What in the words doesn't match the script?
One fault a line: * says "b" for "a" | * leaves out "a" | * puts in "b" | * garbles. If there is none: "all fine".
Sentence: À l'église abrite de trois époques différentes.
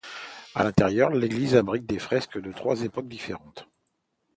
* puts in "l'intérieur"
* puts in "des fresques"